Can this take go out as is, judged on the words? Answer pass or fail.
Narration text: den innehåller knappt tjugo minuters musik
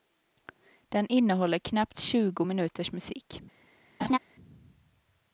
pass